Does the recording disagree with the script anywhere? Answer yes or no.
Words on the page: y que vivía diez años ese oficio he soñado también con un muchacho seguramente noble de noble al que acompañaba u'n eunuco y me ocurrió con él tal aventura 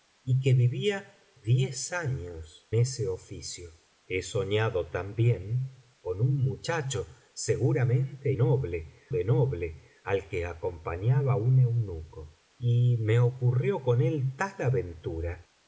no